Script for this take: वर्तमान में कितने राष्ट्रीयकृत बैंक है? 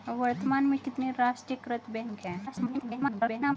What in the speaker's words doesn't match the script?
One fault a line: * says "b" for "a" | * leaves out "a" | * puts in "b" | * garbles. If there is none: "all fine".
* garbles